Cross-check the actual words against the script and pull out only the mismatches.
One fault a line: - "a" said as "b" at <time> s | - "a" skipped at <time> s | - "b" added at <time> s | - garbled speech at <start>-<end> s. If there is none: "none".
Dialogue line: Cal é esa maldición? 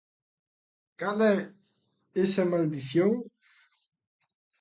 none